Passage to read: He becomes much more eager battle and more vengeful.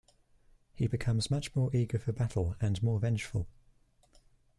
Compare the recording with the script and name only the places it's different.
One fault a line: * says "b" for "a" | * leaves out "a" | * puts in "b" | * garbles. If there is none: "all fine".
* puts in "for"